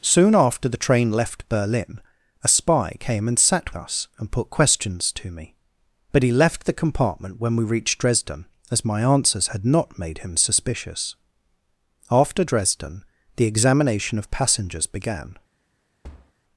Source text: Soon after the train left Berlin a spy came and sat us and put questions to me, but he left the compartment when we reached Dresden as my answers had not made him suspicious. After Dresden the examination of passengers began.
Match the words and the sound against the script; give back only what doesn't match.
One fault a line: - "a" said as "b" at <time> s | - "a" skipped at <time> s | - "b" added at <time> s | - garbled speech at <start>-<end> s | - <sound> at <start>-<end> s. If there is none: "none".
- thud at 16.0-16.3 s